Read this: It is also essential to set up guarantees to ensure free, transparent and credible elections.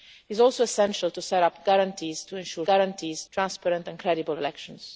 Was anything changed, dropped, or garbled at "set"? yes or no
no